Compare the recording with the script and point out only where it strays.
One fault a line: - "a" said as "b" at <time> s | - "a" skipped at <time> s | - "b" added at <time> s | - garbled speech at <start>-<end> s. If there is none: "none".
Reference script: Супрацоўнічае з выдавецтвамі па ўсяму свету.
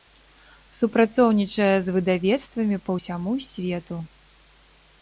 none